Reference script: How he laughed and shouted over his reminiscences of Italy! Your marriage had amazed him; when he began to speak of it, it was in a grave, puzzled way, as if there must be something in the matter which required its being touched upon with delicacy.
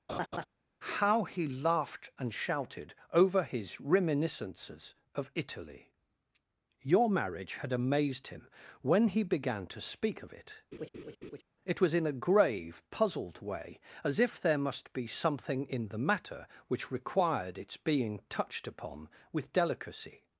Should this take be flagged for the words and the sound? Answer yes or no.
yes